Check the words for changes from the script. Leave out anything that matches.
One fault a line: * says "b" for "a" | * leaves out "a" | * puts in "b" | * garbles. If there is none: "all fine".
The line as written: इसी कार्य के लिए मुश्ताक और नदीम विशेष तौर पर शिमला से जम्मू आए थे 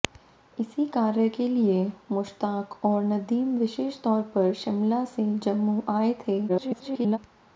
* garbles